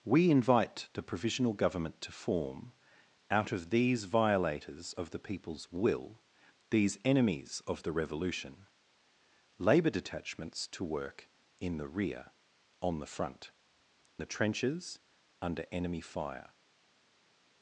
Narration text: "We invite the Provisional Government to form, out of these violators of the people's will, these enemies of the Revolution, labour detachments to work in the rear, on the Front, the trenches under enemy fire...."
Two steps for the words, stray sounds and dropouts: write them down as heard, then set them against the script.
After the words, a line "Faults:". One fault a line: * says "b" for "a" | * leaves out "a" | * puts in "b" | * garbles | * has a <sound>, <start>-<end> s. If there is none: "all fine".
"We invite the Provisional Government to form, out of these violators of the people's will, these enemies of the Revolution, labour detachments to work in the rear, on the Front, the trenches under enemy fire...."
Faults:
all fine